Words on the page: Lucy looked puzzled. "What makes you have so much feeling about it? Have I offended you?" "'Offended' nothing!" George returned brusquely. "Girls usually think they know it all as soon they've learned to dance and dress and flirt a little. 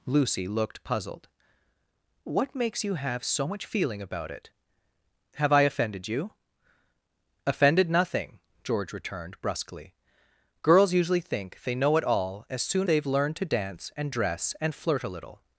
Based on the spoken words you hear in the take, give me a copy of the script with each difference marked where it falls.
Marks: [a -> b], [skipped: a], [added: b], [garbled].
Lucy looked puzzled. "What makes you have so much feeling about it? Have I offended you?" "'Offended' nothing!" George returned brusquely. "Girls usually think they know it all as soon they've learned to dance and dress and flirt a little.